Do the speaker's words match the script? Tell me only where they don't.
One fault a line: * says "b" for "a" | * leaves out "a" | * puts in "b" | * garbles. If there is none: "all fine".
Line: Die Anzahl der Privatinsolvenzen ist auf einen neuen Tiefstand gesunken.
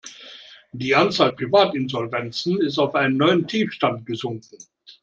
* leaves out "der"